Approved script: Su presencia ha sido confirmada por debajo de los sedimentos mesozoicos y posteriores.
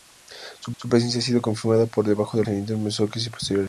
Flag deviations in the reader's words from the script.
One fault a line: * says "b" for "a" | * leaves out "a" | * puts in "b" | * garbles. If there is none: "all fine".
* puts in "su"
* leaves out "los"